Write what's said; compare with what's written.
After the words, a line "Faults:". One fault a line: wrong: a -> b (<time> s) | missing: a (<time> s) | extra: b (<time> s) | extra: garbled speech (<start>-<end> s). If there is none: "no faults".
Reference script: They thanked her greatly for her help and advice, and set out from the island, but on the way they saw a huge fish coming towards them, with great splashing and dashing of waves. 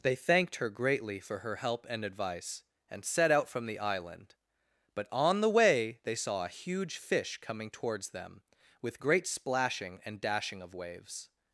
They thanked her greatly for her help and advice, and set out from the island, but on the way they saw a huge fish coming towards them, with great splashing and dashing of waves.
Faults:
no faults